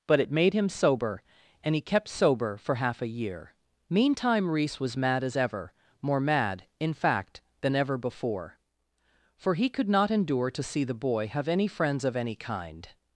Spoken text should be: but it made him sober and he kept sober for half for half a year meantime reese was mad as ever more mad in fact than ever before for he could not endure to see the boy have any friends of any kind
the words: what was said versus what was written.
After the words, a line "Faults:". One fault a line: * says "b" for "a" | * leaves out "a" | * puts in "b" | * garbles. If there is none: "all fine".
but it made him sober and he kept sober for half a year meantime reese was mad as ever more mad in fact than ever before for he could not endure to see the boy have any friends of any kind
Faults:
* leaves out "for half"